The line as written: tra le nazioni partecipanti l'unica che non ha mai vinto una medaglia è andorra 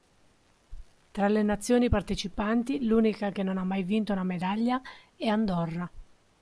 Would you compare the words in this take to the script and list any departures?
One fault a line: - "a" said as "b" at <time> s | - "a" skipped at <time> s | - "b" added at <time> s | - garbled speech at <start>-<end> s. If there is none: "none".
none